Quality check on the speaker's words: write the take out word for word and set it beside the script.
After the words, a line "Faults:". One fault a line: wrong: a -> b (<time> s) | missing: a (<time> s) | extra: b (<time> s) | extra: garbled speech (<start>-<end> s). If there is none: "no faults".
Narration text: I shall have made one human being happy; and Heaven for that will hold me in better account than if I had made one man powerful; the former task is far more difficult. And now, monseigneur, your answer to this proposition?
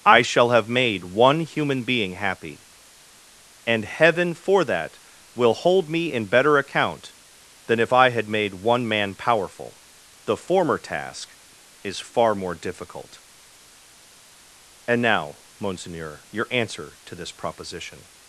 I shall have made one human being happy; and Heaven for that will hold me in better account than if I had made one man powerful; the former task is far more difficult. And now, monseigneur, your answer to this proposition?
Faults:
no faults